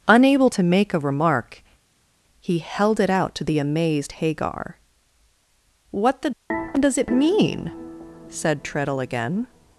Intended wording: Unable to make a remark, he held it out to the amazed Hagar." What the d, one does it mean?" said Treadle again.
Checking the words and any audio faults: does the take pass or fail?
fail